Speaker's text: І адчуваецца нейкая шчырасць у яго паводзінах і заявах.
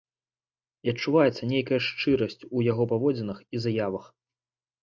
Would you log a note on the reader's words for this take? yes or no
no